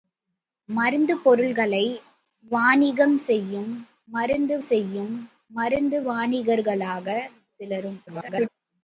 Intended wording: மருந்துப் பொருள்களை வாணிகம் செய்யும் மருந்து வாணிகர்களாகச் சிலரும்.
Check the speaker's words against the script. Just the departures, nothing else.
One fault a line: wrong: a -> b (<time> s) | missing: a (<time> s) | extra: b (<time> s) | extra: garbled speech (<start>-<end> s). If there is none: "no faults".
extra: செய்யும் மருந்து (4.6 s)
extra: garbled speech (8.1-8.5 s)